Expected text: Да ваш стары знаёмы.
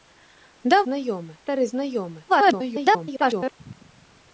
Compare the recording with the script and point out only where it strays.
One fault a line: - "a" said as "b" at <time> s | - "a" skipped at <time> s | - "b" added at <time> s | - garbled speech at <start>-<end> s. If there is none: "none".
- "ваш" said as "знаёмы" at 0.9 s
- garbled speech at 2.3-3.6 s